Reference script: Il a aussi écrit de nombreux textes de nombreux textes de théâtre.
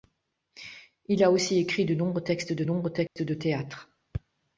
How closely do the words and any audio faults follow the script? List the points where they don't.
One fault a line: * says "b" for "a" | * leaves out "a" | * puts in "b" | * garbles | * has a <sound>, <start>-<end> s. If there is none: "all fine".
* has a dropout, 3.1-3.2 s